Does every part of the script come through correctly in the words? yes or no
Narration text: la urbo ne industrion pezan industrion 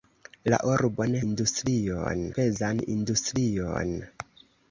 yes